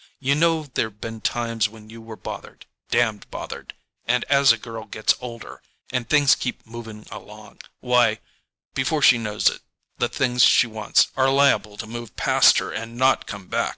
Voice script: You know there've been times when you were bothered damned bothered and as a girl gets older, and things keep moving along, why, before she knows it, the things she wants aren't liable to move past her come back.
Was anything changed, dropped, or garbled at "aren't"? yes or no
yes